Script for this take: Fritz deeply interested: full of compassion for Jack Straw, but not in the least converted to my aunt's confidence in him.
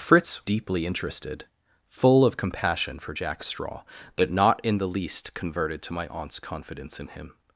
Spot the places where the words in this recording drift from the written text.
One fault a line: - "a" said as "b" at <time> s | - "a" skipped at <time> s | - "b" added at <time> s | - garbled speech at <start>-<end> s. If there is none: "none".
none